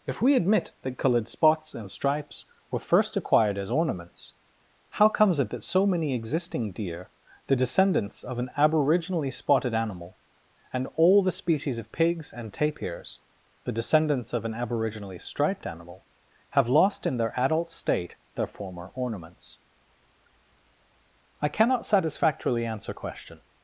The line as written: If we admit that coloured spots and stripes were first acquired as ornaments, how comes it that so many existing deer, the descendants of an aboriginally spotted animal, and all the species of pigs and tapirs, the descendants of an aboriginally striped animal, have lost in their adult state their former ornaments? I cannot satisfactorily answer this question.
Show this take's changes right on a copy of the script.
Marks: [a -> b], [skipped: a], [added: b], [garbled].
If we admit that coloured spots and stripes were first acquired as ornaments, how comes it that so many existing deer, the descendants of an aboriginally spotted animal, and all the species of pigs and tapirs, the descendants of an aboriginally striped animal, have lost in their adult state their former ornaments? I cannot satisfactorily answer [skipped: this] question.